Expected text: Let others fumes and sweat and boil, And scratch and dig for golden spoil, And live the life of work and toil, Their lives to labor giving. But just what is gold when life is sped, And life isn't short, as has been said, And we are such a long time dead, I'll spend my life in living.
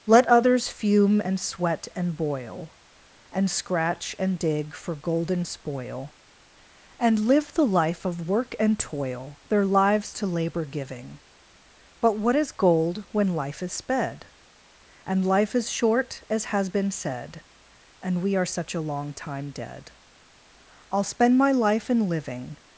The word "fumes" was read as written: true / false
false